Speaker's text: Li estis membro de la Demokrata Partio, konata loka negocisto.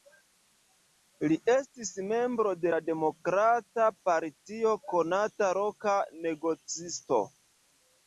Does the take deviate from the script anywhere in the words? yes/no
no